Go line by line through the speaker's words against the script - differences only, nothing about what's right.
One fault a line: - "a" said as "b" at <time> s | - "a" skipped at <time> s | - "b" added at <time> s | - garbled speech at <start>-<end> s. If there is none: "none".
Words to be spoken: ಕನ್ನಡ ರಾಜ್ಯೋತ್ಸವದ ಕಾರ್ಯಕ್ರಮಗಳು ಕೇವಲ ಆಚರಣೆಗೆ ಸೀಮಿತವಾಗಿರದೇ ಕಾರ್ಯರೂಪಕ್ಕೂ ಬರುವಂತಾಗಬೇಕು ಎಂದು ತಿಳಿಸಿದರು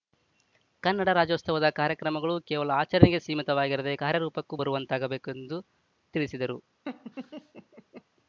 none